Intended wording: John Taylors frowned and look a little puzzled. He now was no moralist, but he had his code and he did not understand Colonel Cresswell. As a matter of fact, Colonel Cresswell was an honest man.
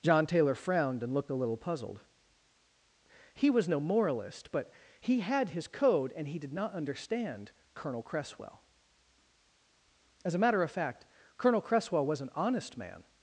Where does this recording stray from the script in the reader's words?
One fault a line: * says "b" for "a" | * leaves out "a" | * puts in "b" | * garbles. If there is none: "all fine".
* says "Taylor" for "Taylors"
* says "looked" for "look"
* leaves out "now"